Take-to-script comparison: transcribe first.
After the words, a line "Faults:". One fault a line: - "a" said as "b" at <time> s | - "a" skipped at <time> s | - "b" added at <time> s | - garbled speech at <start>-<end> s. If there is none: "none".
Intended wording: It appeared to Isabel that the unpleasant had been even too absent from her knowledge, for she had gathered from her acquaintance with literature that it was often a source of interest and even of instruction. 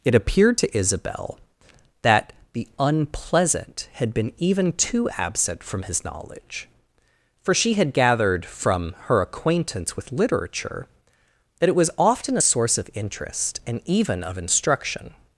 It appeared to Isabel that the unpleasant had been even too absent from his knowledge, for she had gathered from her acquaintance with literature that it was often a source of interest and even of instruction.
Faults:
- "her" said as "his" at 5.8 s